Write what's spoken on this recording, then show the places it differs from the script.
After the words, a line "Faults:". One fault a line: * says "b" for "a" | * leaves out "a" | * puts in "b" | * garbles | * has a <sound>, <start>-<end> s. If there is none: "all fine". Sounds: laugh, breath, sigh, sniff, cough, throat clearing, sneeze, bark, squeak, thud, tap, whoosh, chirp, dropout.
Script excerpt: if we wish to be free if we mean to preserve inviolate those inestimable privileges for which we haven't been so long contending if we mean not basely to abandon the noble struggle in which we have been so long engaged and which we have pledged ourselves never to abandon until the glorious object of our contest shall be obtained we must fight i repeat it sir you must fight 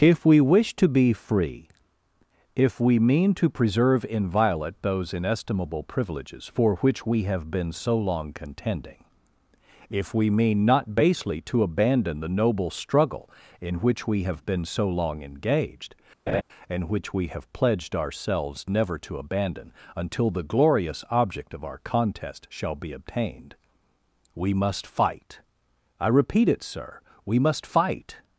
if we wish to be free if we mean to preserve inviolate those inestimable privileges for which we have been so long contending if we mean not basely to abandon the noble struggle in which we have been so long engaged and which we have pledged ourselves never to abandon until the glorious object of our contest shall be obtained we must fight i repeat it sir we must fight
Faults:
* says "have" for "haven't"
* has a laugh, 16.3-16.4 s
* says "we" for "you"